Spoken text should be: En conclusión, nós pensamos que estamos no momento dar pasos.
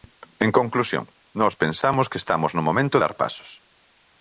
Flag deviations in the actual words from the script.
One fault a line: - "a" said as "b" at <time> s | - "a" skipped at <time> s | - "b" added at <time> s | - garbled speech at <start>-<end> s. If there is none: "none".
none